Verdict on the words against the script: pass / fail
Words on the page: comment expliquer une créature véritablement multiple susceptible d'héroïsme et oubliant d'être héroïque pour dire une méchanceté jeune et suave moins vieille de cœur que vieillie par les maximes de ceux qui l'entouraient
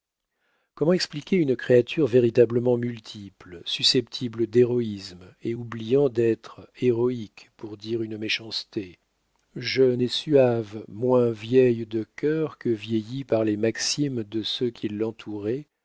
pass